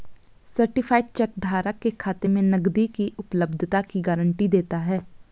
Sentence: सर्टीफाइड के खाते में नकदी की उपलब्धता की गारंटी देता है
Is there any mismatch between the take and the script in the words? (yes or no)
yes